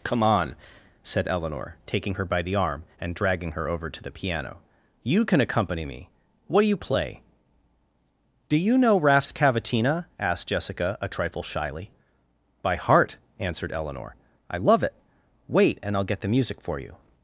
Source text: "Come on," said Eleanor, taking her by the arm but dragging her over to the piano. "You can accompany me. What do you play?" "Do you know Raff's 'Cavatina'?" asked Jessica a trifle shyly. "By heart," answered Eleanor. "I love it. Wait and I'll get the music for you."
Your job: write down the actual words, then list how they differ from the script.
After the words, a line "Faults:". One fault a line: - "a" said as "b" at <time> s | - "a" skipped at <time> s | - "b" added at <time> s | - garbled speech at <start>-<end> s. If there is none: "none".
"Come on," said Eleanor, taking her by the arm and dragging her over to the piano. "You can accompany me. What do you play?" "Do you know Raff's 'Cavatina'?" asked Jessica a trifle shyly. "By heart," answered Eleanor. "I love it. Wait and I'll get the music for you."
Faults:
- "but" said as "and" at 3.0 s